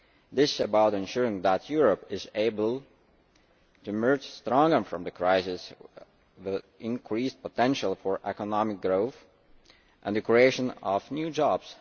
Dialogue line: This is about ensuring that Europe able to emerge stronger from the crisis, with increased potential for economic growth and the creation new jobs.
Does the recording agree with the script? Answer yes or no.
no